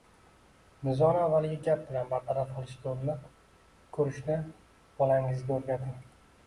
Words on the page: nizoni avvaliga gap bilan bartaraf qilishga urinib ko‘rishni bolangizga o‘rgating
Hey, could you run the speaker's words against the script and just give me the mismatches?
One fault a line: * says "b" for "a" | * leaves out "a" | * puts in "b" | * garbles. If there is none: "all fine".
all fine